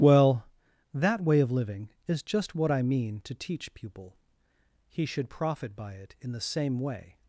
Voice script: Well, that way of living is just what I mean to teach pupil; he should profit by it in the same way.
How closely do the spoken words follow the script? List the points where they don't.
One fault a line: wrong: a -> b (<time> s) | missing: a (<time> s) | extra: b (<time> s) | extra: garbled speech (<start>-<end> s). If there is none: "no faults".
no faults